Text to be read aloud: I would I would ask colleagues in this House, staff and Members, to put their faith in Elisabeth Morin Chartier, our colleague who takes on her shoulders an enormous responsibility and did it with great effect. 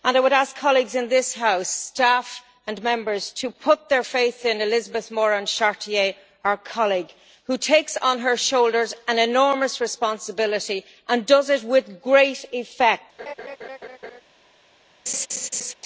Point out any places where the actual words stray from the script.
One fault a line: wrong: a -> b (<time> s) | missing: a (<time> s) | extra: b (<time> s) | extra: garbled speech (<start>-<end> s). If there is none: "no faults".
missing: I would (0.3 s)
wrong: did -> does (11.2 s)